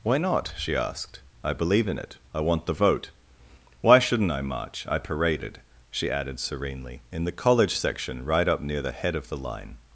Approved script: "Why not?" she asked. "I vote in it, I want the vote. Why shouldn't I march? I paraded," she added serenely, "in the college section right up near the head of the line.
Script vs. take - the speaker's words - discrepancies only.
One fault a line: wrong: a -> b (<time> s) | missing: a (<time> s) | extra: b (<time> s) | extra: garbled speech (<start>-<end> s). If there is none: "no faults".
wrong: vote -> believe (1.5 s)